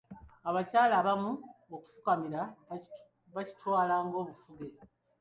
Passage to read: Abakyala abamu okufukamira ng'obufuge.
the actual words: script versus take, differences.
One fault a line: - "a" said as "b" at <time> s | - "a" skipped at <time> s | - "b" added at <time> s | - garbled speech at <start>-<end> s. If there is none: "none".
- "bakitwala" added at 3.3 s